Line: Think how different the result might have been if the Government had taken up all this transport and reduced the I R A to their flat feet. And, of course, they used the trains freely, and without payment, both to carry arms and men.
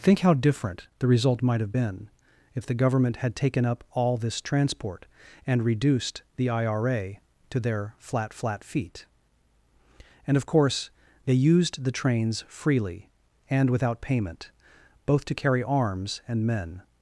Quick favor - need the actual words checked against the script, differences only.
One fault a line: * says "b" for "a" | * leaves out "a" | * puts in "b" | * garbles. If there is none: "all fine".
* puts in "flat"